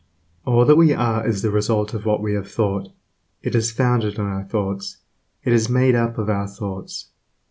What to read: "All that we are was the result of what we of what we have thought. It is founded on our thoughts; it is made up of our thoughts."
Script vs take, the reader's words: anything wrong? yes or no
yes